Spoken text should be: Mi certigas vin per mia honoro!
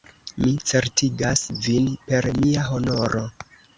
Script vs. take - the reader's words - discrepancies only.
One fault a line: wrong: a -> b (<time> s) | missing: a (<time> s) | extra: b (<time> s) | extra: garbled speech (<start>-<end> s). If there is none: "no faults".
no faults